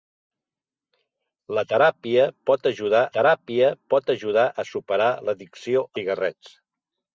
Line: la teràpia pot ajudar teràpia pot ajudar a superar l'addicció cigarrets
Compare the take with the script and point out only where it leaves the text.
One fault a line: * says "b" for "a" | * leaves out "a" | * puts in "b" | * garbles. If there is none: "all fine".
all fine